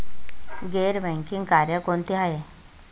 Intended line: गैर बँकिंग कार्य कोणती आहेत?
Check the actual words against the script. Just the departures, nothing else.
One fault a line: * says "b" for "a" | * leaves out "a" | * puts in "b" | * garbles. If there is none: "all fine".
all fine